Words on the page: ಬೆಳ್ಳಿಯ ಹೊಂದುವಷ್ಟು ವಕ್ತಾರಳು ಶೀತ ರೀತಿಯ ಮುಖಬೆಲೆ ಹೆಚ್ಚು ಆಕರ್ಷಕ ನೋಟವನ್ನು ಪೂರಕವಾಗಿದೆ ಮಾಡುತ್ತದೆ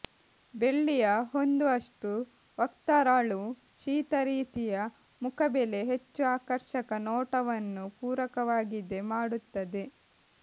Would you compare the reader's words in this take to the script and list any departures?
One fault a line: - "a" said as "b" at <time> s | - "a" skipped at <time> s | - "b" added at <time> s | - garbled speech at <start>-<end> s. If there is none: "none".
none